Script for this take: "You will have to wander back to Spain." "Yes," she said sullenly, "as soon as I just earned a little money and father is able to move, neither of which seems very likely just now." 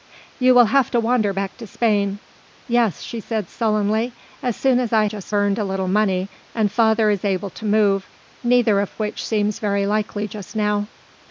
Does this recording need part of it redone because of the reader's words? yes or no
no